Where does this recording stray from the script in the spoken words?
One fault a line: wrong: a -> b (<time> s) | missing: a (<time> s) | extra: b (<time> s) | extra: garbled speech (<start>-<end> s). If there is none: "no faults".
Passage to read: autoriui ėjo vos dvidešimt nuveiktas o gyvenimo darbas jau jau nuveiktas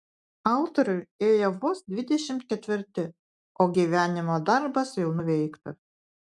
wrong: nuveiktas -> ketvirti (2.5 s)
missing: jau (5.1 s)